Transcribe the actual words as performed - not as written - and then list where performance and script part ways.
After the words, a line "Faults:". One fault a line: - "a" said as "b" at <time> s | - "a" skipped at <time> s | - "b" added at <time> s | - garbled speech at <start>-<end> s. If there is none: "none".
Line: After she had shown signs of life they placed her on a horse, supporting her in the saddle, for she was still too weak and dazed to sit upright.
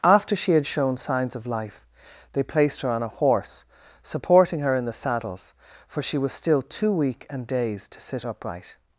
After she had shown signs of life they placed her on a horse, supporting her in the saddles, for she was still too weak and dazed to sit upright.
Faults:
- "saddle" said as "saddles" at 4.9 s